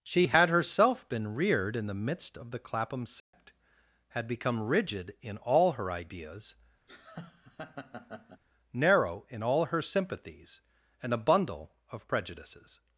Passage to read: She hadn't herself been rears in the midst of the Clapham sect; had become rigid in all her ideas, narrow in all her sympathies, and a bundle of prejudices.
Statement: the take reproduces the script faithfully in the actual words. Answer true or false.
false